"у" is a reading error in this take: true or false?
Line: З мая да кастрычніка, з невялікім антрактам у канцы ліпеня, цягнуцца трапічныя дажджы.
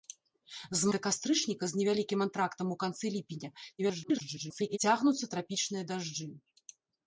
false